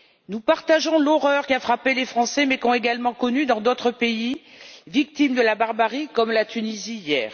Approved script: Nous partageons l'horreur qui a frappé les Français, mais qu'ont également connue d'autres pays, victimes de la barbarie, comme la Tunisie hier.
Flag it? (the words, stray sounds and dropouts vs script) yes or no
no